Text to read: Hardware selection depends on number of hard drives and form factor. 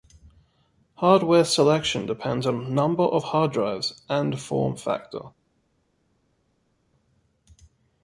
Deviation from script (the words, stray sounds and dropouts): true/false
false